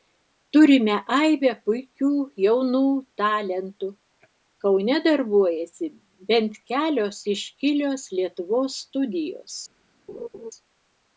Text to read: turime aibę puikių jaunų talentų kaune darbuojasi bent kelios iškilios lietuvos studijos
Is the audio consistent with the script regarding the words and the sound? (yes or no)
no